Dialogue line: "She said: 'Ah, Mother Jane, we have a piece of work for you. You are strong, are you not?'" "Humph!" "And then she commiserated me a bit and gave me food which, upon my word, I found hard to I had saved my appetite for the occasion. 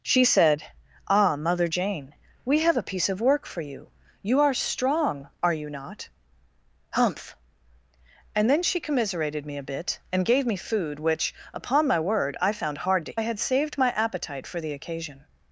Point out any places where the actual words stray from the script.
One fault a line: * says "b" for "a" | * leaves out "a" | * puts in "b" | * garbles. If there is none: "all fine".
all fine